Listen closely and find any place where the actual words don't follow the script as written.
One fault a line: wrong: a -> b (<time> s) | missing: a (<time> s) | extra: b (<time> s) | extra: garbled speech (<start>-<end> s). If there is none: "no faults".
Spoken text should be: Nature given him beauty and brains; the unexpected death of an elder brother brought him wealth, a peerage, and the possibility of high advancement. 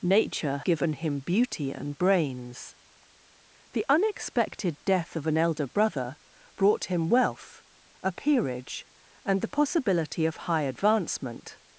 no faults